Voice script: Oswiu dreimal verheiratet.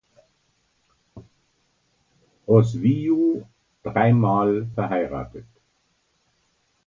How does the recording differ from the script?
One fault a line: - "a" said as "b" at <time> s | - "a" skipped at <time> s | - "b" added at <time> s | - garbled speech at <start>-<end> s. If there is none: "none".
none